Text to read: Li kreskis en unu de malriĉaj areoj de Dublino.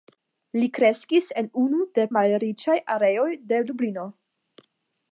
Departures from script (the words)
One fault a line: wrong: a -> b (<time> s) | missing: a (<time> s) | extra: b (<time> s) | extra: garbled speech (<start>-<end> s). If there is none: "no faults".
no faults